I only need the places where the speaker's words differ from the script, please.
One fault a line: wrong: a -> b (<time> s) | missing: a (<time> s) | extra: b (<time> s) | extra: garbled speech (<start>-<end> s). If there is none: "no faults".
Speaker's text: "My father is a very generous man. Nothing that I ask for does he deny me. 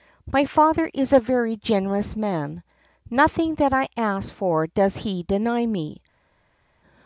no faults